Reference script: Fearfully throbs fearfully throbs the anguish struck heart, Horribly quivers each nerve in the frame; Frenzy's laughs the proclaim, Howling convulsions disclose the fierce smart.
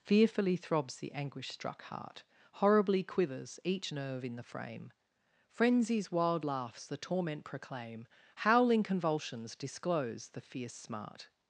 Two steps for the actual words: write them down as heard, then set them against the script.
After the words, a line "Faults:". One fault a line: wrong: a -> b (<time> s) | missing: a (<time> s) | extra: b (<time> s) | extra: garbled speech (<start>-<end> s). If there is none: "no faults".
Fearfully throbs the anguish struck heart, Horribly quivers each nerve in the frame; Frenzy's wild laughs the torment proclaim, Howling convulsions disclose the fierce smart.
Faults:
missing: fearfully throbs (1.0 s)
extra: wild (6.1 s)
extra: torment (7.0 s)